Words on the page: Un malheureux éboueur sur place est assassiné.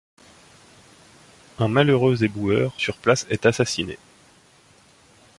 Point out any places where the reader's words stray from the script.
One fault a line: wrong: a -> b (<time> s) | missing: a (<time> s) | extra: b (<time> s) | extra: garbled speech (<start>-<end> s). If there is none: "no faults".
no faults